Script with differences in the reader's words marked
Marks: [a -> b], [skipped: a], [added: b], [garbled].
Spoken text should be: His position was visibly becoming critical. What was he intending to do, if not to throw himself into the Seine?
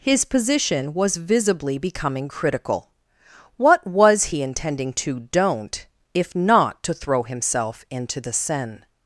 His position was visibly becoming critical. What was he intending to [do, -> don't] if not to throw himself into the Seine?